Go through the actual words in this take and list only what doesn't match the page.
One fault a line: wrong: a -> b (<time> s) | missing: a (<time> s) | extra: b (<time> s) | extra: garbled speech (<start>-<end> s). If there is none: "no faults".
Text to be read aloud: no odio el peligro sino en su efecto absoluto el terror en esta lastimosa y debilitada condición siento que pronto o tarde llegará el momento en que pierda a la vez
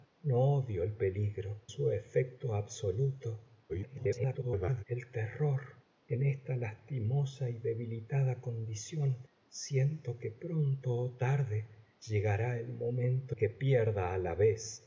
missing: sino en (1.6 s)
extra: garbled speech (3.7-4.8 s)
missing: en (13.4 s)